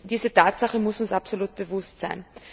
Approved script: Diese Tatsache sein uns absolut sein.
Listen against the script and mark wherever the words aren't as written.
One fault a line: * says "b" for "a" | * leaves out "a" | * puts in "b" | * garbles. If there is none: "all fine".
* says "muss" for "sein"
* puts in "bewusst"